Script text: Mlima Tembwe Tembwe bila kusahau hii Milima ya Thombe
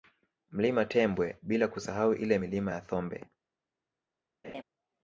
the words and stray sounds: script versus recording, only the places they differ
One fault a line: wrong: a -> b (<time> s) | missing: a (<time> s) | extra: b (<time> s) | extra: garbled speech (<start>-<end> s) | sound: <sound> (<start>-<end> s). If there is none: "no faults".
missing: Tembwe (1.4 s)
wrong: hii -> ile (2.1 s)
sound: laugh (4.4-4.6 s)